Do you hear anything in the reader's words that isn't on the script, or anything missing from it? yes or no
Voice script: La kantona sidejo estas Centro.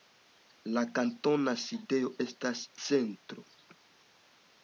no